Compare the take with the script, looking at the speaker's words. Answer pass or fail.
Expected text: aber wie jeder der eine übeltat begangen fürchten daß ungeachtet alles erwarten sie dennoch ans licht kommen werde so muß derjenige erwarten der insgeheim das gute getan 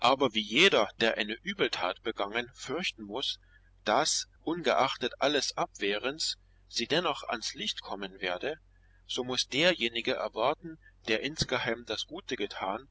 fail